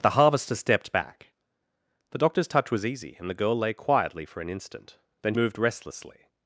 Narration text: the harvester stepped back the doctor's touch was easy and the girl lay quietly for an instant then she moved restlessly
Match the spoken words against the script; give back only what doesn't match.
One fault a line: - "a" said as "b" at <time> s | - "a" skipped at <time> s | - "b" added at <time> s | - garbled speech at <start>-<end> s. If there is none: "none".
- "she" skipped at 5.3 s